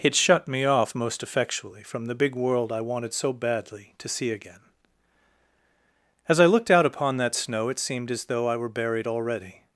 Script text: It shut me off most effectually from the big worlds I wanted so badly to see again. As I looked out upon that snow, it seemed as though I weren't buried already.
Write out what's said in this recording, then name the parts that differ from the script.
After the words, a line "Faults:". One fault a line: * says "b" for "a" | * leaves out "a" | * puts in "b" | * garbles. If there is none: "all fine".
It shut me off most effectually from the big world I wanted so badly to see again. As I looked out upon that snow, it seemed as though I were buried already.
Faults:
* says "world" for "worlds"
* says "were" for "weren't"